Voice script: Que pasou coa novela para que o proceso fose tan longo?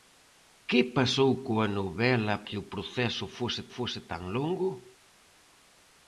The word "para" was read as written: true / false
false